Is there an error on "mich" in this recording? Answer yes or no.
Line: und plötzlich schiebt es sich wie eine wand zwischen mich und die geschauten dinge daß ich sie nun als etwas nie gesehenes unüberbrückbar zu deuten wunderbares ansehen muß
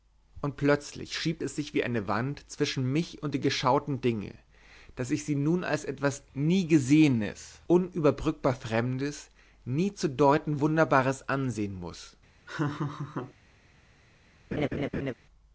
no